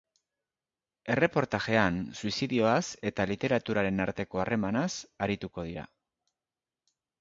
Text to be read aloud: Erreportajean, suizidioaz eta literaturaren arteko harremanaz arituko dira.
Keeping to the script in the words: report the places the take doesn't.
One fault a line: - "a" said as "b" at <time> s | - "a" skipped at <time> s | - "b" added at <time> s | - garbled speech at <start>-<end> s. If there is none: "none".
none